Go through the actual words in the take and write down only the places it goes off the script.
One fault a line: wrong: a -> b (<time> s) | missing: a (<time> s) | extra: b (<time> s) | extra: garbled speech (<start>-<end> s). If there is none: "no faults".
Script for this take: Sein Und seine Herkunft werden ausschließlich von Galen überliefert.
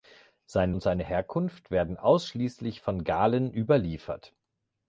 no faults